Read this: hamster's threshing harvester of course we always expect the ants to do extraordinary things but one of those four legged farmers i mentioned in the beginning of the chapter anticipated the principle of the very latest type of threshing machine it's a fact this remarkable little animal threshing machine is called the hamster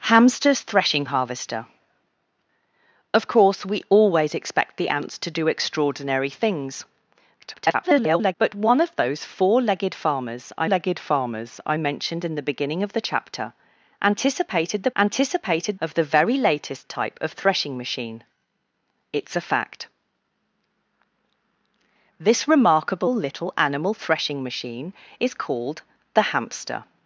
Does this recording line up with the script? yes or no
no